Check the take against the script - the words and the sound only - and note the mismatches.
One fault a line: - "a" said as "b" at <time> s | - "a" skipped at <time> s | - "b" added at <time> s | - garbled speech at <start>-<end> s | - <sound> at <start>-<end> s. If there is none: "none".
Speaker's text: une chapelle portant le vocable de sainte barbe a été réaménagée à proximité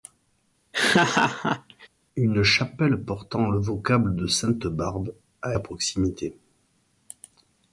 - laugh at 0.7-1.9 s
- "été réaménagée" skipped at 5.6 s